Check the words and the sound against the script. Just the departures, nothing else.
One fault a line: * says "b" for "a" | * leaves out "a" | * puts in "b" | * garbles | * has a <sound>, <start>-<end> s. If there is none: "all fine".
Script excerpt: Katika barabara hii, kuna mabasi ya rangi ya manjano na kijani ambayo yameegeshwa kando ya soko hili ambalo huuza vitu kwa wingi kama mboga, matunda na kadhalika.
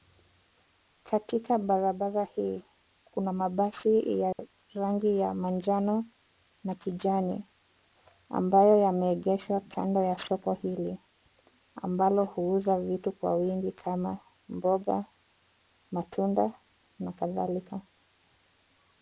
* has a dropout, 4.3-4.4 s